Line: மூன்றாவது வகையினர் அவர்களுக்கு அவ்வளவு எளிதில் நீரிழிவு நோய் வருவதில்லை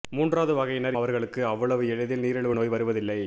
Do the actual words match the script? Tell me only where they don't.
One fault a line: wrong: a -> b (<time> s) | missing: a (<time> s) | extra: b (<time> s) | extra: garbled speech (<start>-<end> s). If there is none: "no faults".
no faults